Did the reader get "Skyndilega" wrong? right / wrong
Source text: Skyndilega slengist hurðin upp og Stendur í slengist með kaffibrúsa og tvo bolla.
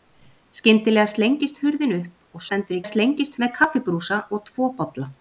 right